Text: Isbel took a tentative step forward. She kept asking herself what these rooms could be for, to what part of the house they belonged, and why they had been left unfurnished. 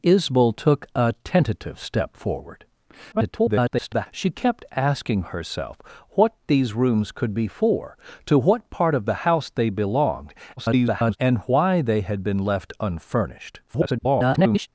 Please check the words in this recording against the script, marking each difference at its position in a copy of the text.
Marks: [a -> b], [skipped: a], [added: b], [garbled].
Isbel took a tentative step forward. [garbled] She kept asking herself what these rooms could be for, to what part of the house they belonged, [garbled] and why they had been left unfurnished. [garbled]